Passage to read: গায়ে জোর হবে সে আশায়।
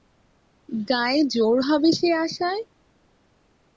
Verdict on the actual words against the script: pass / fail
pass